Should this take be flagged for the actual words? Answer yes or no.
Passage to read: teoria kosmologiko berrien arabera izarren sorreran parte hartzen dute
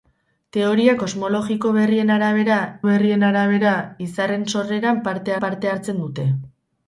yes